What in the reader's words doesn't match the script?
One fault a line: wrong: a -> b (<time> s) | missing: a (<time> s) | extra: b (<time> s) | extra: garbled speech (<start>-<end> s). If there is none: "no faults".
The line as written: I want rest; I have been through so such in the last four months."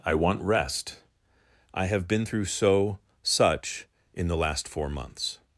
no faults